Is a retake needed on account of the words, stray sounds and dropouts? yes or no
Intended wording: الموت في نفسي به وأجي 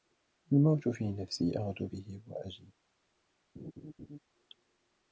yes